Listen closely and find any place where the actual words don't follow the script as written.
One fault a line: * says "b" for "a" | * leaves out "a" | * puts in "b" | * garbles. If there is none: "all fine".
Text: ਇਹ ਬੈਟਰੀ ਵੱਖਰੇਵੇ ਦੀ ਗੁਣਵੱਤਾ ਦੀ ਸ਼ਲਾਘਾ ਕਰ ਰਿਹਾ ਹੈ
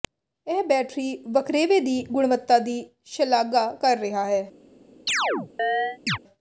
all fine